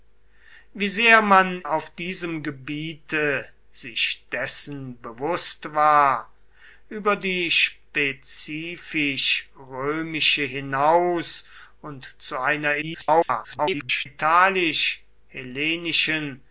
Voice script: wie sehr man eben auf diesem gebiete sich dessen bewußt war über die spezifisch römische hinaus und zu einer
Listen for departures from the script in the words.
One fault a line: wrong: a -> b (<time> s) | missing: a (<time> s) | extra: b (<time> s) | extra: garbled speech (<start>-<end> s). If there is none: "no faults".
missing: eben (1.6 s)
extra: garbled speech (12.8-14.1 s)